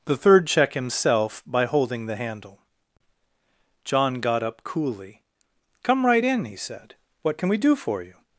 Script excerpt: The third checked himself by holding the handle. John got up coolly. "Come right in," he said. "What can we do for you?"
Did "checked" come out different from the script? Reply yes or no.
yes